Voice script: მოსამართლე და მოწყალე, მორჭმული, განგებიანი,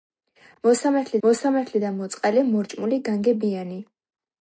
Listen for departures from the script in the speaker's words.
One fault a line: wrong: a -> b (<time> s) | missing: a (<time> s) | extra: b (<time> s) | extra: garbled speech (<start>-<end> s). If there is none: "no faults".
extra: მოსამართლე (1.3 s)